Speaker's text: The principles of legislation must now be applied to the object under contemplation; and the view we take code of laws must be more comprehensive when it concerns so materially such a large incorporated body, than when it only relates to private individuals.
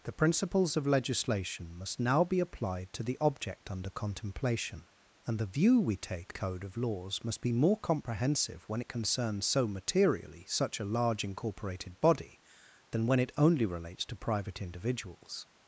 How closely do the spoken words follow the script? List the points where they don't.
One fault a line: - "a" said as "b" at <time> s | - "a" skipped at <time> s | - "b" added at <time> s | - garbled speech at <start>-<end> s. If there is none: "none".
none